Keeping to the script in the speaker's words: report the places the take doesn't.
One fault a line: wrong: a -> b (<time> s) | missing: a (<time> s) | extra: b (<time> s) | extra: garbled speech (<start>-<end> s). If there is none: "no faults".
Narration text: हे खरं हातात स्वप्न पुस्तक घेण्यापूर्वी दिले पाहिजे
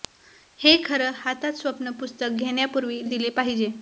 no faults